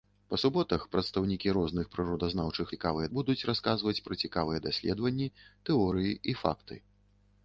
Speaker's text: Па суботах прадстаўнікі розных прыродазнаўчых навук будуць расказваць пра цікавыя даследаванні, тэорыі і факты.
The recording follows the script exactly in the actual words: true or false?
false